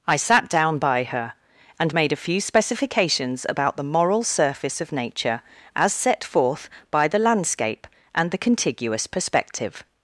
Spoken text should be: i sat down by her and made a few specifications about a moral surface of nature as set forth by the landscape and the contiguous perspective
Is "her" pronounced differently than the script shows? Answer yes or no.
no